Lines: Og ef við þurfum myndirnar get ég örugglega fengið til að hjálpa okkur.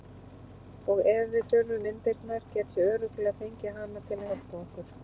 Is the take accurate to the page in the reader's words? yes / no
no